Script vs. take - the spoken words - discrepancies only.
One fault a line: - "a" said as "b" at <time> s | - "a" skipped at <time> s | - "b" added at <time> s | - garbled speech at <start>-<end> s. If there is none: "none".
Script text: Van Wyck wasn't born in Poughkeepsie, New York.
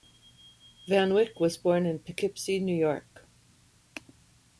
- "wasn't" said as "was" at 1.4 s